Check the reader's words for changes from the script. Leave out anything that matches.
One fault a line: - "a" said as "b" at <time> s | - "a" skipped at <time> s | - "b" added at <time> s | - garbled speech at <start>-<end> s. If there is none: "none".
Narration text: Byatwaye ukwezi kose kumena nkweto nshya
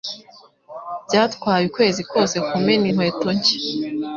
none